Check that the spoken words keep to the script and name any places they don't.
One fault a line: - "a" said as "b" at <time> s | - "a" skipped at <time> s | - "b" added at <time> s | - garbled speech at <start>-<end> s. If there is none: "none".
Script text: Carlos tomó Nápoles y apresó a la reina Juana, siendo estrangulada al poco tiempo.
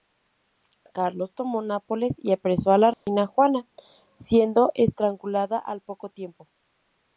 none